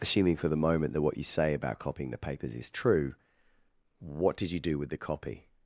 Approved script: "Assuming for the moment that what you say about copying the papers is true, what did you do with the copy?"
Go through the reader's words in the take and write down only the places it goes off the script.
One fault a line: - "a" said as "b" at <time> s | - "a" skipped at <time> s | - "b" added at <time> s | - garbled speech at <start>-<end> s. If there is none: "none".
none